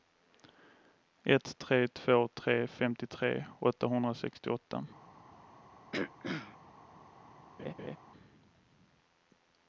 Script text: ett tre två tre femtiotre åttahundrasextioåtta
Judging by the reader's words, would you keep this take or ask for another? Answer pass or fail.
pass